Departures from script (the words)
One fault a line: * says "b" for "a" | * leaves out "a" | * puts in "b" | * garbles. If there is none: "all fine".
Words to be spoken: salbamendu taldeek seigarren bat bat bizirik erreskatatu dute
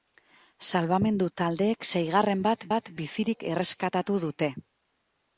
all fine